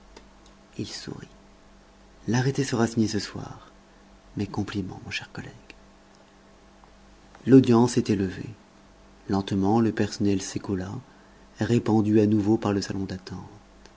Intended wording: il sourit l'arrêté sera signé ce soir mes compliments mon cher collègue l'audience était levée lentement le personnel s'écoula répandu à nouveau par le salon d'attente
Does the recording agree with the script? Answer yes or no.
yes